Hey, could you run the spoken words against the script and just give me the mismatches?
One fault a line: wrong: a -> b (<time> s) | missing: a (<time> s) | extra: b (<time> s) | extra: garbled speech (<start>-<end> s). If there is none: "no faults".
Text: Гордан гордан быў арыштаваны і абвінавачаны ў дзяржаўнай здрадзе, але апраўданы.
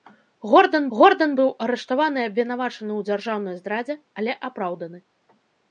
no faults